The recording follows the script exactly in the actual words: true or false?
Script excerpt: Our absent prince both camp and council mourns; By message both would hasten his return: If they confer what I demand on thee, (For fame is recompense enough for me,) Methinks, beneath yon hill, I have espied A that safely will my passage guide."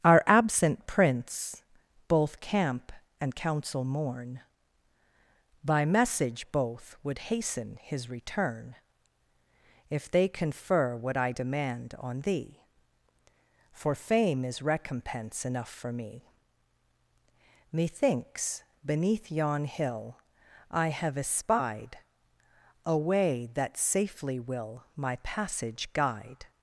false